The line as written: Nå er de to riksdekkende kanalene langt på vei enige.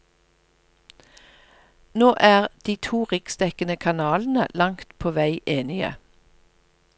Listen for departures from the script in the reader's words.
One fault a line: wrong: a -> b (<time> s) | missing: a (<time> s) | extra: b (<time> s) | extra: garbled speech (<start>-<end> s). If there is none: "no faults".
no faults